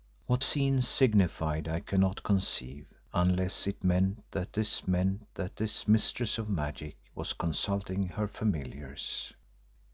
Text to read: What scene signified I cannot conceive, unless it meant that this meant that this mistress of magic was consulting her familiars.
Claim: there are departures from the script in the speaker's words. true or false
false